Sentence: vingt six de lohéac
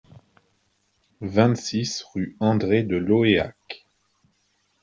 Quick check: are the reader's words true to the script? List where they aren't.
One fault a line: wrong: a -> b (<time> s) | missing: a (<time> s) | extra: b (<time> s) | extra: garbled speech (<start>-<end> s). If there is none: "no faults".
extra: rue andré (2.1 s)